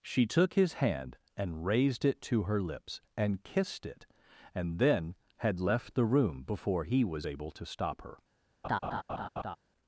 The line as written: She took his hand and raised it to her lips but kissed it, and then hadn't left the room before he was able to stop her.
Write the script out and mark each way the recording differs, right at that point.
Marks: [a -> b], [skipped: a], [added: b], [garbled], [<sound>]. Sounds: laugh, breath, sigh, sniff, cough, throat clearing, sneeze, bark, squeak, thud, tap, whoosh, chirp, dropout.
She took his hand and raised it to her lips [but -> and] kissed it, and then [hadn't -> had] left the room before he was able to stop her. [laugh]